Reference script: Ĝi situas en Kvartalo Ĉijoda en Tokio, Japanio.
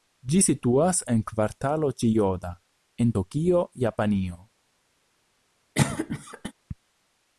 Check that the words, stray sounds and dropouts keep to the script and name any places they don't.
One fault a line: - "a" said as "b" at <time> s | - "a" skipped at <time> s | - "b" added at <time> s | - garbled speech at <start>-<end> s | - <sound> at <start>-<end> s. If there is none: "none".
- cough at 5.7-6.5 s